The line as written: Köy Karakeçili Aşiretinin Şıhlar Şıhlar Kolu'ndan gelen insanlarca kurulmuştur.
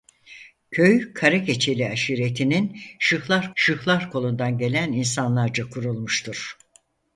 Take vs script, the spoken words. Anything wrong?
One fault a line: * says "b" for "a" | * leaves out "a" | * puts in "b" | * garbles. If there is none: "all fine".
all fine